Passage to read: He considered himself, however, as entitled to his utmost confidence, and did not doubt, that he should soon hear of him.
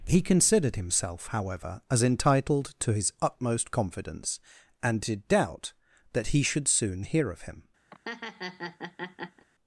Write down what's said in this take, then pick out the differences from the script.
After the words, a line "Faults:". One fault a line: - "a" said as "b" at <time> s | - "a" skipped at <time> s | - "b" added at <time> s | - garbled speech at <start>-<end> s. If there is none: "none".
He considered himself, however, as entitled to his utmost confidence, and did doubt, that he should soon hear of him.
Faults:
- "not" skipped at 5.3 s